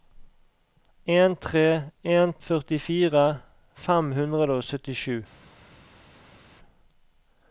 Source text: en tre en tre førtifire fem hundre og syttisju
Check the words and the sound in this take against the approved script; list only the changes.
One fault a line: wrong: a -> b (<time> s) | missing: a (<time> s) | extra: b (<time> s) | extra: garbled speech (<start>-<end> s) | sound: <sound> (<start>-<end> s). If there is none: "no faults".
missing: tre (2.3 s)